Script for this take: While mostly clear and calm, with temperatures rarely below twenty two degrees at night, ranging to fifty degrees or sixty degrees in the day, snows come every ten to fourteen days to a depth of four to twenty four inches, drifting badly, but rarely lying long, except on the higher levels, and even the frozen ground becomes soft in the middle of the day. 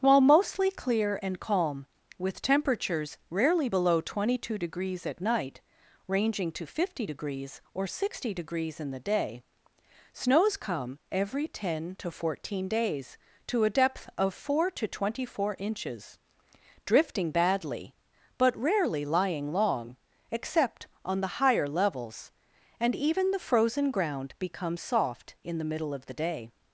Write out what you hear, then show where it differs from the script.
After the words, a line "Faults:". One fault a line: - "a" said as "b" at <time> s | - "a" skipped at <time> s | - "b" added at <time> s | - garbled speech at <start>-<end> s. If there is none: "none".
While mostly clear and calm, with temperatures rarely below twenty two degrees at night, ranging to fifty degrees or sixty degrees in the day, snows come every ten to fourteen days to a depth of four to twenty four inches, drifting badly, but rarely lying long, except on the higher levels, and even the frozen ground becomes soft in the middle of the day.
Faults:
none